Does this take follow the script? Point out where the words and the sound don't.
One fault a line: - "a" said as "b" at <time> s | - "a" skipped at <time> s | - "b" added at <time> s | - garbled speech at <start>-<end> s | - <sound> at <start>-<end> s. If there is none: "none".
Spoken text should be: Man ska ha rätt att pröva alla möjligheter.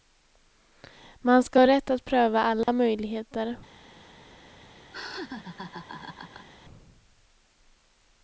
- dropout at 2.6-2.7 s
- laugh at 4.9-6.5 s